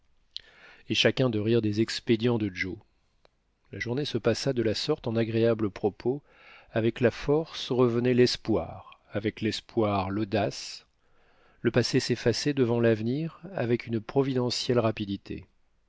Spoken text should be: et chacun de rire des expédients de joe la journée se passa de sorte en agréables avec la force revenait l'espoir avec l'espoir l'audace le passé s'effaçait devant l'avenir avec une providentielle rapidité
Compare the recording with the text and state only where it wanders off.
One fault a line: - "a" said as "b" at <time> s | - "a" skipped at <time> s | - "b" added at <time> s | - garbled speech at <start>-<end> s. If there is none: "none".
- "la" added at 4.6 s
- "propos" added at 5.7 s